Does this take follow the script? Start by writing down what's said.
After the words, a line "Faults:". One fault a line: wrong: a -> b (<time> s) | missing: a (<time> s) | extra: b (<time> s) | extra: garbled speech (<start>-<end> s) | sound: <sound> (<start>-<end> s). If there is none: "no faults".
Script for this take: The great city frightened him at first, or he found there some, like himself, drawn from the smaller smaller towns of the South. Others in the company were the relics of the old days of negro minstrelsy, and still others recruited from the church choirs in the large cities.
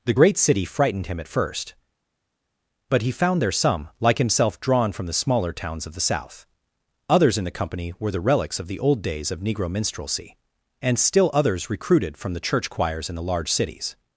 The great city frightened him at first, but he found there some, like himself, drawn from the smaller towns of the South. Others in the company were the relics of the old days of negro minstrelsy, and still others recruited from the church choirs in the large cities.
Faults:
wrong: or -> but (2.9 s)
missing: smaller (5.5 s)